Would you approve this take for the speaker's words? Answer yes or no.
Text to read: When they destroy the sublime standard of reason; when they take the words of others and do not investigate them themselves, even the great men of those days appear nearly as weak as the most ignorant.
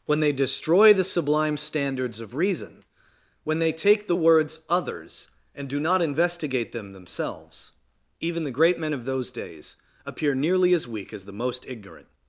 no